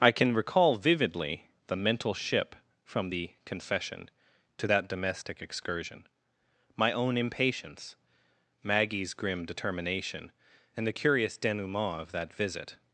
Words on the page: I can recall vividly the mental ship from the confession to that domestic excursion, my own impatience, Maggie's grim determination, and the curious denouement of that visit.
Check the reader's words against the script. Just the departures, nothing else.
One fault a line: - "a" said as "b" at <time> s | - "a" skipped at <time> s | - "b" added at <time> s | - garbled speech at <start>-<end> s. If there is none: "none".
none